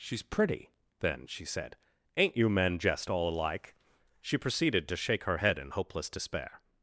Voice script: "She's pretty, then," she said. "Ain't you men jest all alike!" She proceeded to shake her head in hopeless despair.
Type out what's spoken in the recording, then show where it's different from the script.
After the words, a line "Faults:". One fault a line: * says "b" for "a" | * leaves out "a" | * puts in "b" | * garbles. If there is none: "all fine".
"She's pretty, then," she said. "Ain't you men jest all alike!" She proceeded to shake her head in hopeless despair.
Faults:
all fine